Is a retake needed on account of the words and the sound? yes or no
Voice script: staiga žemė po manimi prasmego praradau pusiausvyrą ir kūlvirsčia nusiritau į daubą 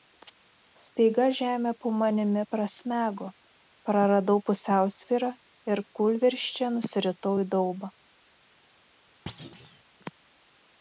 yes